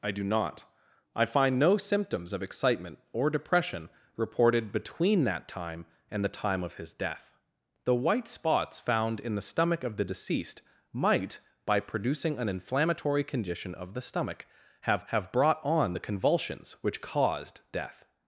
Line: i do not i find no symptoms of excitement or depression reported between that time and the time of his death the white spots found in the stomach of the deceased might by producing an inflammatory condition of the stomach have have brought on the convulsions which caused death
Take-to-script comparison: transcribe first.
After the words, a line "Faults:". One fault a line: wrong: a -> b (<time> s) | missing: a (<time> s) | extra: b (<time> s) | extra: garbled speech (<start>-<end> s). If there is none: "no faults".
i do not i find no symptoms of excitement or depression reported between that time and the time of his death the white spots found in the stomach of the deceased might by producing an inflammatory condition of the stomach have have brought on the convulsions which caused death
Faults:
no faults